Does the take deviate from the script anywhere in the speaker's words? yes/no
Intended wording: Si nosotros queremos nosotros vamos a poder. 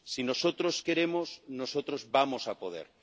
no